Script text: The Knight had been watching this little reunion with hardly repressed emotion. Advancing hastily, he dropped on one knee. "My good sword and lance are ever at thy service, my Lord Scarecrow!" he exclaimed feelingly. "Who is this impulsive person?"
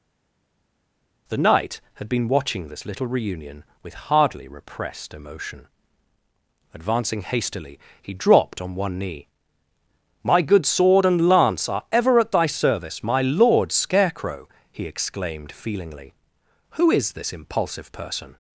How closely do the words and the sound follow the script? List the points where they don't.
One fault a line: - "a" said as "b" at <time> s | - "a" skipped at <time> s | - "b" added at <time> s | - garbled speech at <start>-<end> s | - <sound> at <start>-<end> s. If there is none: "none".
none